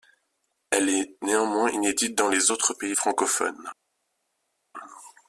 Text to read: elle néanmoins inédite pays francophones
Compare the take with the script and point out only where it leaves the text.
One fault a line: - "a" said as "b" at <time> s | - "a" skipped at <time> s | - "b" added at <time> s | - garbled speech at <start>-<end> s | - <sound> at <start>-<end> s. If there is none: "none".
- "est" added at 0.9 s
- "dans les autres" added at 2.1 s